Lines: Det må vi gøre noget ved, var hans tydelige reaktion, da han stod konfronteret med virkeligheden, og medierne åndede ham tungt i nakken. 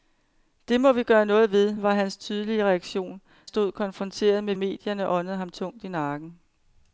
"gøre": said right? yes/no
yes